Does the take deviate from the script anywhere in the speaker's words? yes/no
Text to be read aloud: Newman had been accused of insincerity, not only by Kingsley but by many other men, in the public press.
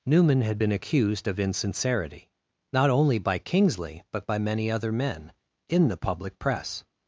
no